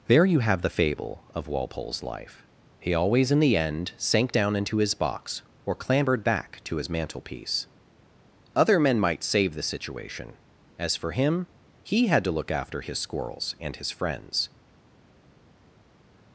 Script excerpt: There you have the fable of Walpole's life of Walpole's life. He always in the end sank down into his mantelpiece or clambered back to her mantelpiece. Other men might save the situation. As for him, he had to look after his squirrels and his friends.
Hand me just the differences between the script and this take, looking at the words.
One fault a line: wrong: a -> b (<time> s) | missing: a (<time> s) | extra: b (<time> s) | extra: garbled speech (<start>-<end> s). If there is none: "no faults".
missing: of Walpole's life (2.5 s)
wrong: mantelpiece -> box (4.9 s)
wrong: her -> his (6.8 s)